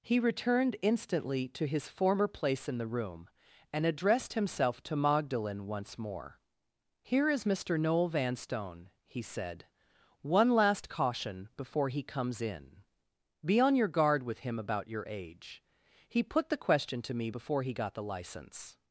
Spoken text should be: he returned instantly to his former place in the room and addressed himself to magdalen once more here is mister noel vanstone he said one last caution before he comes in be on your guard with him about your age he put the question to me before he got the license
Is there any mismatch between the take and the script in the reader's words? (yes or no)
no